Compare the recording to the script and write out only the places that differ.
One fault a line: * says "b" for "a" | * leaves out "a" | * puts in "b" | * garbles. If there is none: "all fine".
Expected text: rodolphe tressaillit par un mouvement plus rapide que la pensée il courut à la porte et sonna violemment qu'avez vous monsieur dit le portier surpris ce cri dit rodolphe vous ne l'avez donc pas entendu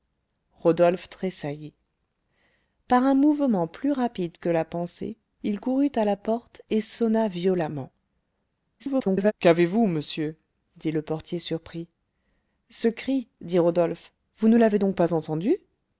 * garbles